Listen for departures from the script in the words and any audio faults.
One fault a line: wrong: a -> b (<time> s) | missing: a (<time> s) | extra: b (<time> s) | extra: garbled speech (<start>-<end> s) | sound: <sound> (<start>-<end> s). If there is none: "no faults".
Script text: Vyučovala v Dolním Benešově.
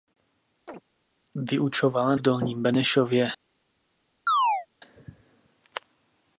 sound: chirp (0.7-0.8 s)
sound: chirp (4.3-4.7 s)